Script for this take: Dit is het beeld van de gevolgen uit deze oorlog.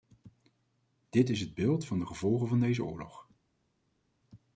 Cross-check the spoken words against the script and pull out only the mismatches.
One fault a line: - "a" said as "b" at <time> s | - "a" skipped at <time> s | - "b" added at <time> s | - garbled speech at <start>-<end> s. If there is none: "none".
- "uit" said as "van" at 2.5 s